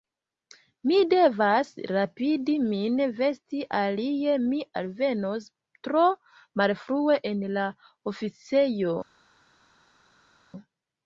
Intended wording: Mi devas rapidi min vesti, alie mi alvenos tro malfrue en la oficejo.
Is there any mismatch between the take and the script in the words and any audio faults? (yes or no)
no